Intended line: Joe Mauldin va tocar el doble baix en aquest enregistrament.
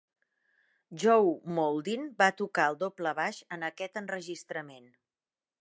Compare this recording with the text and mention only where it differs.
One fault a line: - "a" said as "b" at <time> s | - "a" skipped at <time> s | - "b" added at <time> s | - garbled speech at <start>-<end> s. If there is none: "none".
none